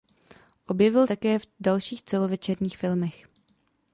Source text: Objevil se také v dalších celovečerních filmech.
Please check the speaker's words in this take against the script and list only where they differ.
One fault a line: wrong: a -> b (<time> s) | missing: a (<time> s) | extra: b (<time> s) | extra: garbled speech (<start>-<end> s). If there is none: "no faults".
missing: se (1.1 s)